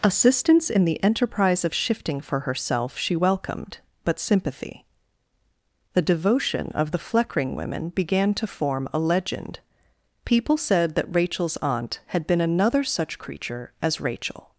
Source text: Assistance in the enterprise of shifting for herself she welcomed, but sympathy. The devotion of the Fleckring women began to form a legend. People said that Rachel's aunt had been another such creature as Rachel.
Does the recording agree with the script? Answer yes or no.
yes